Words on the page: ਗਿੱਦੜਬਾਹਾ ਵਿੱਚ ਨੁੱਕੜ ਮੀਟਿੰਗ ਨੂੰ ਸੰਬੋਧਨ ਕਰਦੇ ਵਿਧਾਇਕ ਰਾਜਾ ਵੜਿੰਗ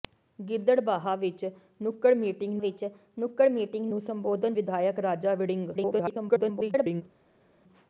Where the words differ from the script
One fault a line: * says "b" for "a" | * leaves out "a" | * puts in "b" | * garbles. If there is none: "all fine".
* puts in "ਵਿੱਚ ਨੁੱਕੜ ਮੀਟਿੰਗ"
* leaves out "ਕਰਦੇ"
* garbles